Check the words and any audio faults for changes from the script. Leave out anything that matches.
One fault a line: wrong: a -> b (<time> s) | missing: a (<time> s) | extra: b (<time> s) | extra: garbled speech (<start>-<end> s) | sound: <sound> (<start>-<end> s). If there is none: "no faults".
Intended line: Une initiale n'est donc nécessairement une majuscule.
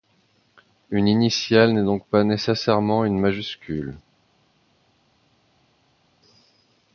extra: pas (2.1 s)